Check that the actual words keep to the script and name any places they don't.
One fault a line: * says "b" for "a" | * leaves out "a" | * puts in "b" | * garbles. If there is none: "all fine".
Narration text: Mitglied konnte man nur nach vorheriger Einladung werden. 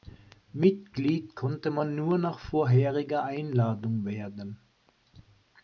all fine